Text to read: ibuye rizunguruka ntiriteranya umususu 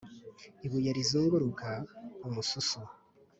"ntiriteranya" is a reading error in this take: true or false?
true